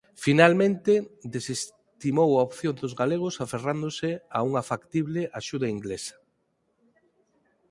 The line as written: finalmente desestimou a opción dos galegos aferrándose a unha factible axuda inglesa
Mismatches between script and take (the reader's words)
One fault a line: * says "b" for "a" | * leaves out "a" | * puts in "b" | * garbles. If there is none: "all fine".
all fine